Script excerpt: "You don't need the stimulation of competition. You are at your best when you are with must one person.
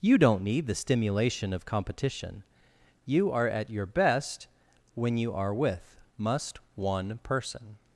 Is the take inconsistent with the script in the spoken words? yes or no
no